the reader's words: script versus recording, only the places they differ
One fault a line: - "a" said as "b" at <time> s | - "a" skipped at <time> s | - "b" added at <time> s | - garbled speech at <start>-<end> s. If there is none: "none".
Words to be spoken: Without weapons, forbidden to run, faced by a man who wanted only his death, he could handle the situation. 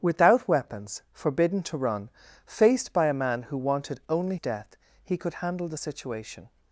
- "his" skipped at 4.3 s